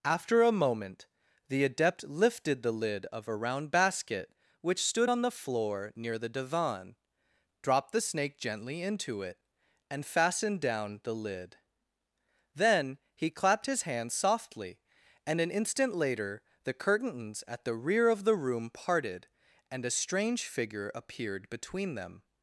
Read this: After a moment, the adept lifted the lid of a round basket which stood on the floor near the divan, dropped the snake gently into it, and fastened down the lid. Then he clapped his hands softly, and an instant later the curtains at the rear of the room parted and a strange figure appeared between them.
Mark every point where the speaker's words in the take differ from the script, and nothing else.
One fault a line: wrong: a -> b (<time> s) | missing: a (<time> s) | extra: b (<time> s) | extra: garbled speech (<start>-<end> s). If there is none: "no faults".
no faults